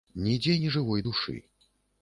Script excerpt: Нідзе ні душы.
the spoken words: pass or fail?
fail